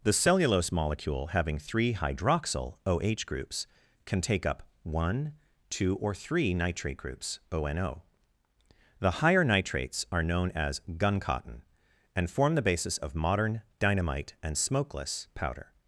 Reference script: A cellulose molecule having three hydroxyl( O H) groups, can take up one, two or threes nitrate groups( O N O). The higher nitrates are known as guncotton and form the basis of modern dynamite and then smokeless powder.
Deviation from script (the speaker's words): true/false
true